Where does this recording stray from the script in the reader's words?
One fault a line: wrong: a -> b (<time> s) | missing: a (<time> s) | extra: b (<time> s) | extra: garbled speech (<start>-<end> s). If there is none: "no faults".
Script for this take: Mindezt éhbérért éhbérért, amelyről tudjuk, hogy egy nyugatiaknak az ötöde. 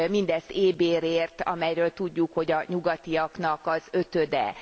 missing: éhbérért (1.4 s)
wrong: egy -> a (2.5 s)